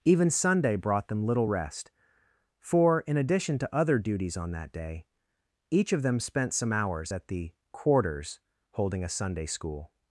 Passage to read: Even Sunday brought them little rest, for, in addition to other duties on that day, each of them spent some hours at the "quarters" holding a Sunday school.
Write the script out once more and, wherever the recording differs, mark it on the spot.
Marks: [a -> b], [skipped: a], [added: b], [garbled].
Even Sunday brought them little rest, for, in addition to other duties on that day, each of them spent some hours at the "quarters" holding a Sunday school.